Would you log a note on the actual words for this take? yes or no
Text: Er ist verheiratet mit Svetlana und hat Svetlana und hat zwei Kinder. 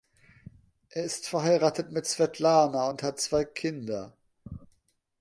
yes